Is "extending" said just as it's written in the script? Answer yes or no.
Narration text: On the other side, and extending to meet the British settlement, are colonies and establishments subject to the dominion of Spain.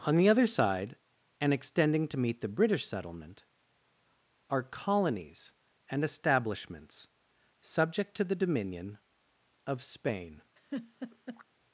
yes